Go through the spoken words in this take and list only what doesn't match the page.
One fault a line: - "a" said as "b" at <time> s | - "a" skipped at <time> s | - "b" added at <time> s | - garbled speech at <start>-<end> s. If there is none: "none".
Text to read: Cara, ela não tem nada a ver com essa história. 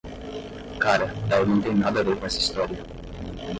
none